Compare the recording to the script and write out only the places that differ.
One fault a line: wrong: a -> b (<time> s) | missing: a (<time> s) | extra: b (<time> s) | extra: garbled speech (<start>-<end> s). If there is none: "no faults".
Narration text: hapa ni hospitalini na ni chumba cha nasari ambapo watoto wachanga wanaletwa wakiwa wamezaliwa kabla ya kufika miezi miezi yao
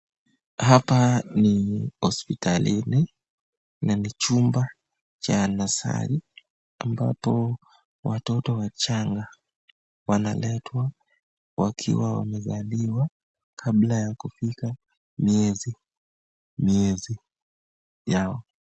no faults